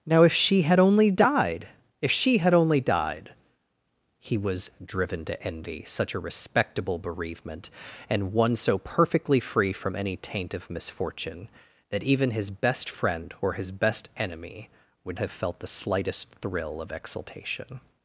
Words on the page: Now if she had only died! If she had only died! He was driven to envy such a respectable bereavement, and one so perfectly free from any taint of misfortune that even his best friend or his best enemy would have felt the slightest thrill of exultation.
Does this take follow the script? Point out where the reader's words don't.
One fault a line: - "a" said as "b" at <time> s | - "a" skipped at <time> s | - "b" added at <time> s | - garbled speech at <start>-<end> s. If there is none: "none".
none